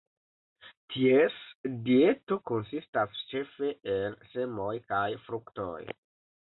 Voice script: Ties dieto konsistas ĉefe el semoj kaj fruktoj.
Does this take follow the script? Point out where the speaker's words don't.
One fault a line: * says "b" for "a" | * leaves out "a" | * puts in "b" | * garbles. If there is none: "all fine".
all fine